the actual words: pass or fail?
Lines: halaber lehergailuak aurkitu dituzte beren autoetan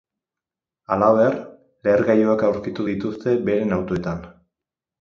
pass